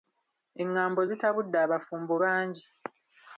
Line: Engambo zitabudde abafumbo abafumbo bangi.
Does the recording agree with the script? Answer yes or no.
no